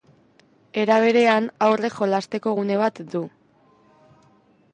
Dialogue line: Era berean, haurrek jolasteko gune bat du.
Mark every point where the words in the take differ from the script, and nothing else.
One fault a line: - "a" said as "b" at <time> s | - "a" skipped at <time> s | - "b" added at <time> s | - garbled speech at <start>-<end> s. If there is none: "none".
none